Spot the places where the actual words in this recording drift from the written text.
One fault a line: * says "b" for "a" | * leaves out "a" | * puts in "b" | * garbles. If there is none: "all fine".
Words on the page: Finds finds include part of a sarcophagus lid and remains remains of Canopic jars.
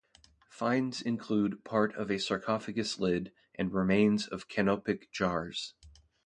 * leaves out "finds"
* leaves out "remains"